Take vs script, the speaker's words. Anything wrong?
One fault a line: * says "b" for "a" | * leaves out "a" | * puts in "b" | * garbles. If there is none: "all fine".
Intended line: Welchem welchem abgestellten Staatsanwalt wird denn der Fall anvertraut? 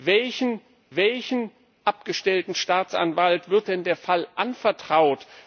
all fine